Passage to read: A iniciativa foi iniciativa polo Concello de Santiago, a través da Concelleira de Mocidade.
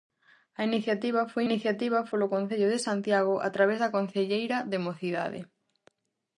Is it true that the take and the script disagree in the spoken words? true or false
false